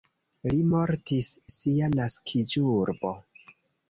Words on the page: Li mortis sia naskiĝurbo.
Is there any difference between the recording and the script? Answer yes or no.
no